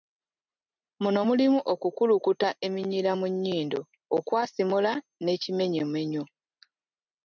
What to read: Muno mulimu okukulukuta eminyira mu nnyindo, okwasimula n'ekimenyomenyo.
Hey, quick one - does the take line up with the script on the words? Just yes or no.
yes